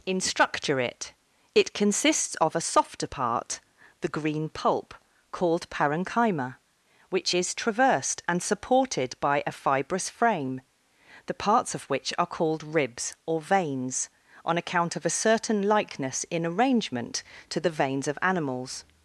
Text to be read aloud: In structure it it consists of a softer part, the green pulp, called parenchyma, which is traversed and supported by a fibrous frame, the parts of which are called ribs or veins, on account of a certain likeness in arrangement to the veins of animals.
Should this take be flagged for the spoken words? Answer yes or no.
no